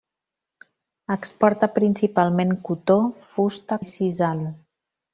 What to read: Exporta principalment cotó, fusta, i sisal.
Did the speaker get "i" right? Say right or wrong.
right